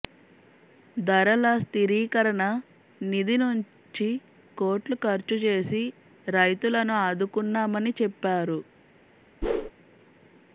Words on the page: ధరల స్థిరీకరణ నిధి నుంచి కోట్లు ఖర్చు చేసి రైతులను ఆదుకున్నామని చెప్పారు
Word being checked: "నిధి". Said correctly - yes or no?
yes